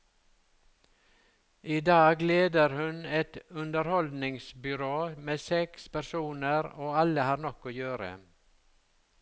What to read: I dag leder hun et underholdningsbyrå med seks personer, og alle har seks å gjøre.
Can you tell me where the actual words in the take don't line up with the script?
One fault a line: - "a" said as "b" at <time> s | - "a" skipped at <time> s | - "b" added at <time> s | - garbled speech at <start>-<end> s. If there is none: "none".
- "seks" said as "nok" at 7.5 s